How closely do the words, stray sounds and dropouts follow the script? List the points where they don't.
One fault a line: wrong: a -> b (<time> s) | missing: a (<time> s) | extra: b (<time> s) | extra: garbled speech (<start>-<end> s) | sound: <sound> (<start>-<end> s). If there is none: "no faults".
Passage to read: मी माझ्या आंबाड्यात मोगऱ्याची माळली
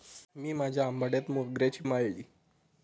no faults